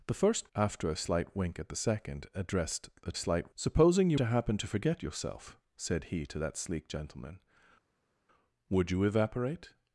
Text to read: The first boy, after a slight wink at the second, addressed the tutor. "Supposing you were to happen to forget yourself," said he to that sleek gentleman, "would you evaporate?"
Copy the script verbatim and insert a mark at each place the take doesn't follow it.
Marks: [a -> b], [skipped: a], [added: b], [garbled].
The first [skipped: boy,] after a slight wink at the second, addressed the [tutor. -> slight] "Supposing you [skipped: were] to happen to forget yourself," said he to that sleek gentleman, "would you evaporate?"